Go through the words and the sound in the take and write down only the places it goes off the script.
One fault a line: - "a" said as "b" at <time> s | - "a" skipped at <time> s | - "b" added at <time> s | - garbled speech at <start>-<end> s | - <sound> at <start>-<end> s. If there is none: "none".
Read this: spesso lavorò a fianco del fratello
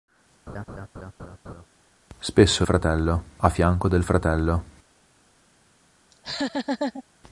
- laugh at 0.5-1.7 s
- "lavorò" said as "fratello" at 2.6 s
- laugh at 6.1-7.0 s